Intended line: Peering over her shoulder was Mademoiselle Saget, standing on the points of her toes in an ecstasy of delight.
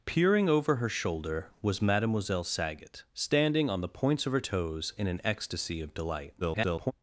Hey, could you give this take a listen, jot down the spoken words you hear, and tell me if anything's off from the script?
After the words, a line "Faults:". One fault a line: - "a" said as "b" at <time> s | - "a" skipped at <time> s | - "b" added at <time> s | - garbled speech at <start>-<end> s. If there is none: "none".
Peering over her shoulder was Mademoiselle Saget, standing on the points of her toes in an ecstasy of delight. [garbled]
Faults:
- garbled speech at 6.4-6.9 s